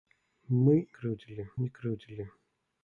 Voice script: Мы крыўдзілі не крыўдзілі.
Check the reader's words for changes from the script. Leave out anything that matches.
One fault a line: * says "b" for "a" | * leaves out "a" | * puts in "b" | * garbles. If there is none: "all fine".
all fine